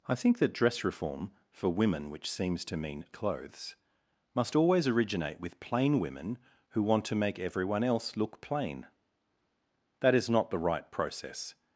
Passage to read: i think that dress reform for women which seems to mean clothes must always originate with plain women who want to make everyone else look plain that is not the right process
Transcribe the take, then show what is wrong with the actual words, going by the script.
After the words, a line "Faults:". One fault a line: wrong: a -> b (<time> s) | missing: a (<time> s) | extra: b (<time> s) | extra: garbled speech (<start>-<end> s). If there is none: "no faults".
i think that dress reform for women which seems to mean clothes must always originate with plain women who want to make everyone else look plain that is not the right process
Faults:
no faults